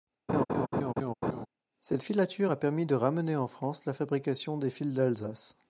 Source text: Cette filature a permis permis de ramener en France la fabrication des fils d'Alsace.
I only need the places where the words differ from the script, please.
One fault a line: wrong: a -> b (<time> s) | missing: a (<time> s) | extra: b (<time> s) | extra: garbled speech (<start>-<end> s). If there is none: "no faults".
missing: permis (2.9 s)